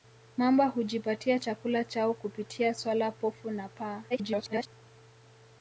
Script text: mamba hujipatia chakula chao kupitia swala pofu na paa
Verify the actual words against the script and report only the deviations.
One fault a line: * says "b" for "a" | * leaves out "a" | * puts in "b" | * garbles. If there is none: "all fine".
* garbles